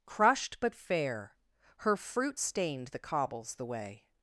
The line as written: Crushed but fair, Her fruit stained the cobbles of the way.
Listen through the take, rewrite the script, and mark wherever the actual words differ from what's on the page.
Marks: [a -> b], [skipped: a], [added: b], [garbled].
Crushed but fair, Her fruit stained the cobbles [skipped: of] the way.